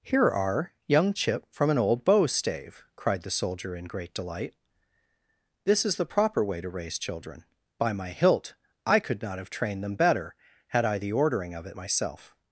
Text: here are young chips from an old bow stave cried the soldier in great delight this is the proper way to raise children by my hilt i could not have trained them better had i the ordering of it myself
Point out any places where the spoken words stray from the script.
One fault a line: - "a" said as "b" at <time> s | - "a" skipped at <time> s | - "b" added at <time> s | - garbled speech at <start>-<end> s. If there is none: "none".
- "chips" said as "chip" at 1.1 s